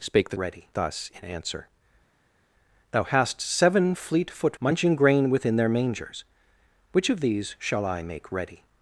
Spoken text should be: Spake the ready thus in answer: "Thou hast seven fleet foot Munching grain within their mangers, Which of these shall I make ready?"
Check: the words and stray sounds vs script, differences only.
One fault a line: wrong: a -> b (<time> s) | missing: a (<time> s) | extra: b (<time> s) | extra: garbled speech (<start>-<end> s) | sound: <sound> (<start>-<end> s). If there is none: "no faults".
no faults